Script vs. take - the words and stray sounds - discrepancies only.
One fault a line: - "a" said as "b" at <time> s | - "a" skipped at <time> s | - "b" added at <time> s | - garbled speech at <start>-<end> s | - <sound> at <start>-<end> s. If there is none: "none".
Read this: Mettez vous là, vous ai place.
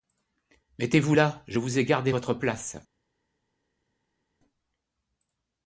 - "je" added at 1.5 s
- "gardé votre" added at 1.9 s